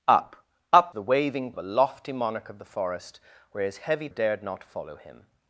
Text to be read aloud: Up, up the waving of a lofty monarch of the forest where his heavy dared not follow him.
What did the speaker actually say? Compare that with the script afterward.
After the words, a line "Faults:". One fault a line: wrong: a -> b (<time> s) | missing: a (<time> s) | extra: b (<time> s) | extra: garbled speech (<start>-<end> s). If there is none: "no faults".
Up, up the waving of a lofty monarch of the forest where his heavy dared not follow him.
Faults:
no faults